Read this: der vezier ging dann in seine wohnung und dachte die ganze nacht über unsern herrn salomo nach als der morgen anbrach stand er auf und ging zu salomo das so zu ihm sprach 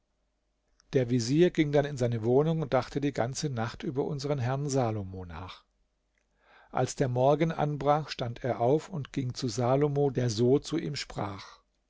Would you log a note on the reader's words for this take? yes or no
yes